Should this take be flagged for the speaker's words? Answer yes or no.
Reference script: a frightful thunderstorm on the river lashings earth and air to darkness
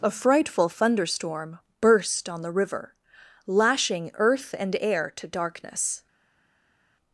yes